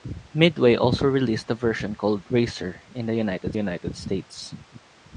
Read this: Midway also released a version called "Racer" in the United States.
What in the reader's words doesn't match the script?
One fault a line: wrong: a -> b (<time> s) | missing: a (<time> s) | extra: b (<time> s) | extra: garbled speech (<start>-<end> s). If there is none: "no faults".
extra: United (3.5 s)